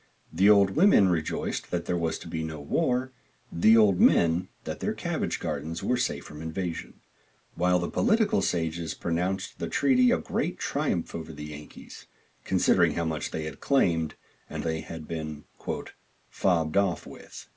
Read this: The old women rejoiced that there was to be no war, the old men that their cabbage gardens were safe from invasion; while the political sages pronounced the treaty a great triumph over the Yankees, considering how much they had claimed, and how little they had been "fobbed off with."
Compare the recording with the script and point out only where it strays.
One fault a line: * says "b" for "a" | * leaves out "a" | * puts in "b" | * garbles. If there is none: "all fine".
* leaves out "how little"